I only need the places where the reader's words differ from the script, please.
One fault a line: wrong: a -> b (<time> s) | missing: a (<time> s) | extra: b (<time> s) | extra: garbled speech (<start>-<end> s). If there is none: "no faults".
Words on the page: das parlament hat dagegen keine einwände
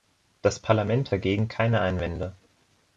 missing: hat (1.1 s)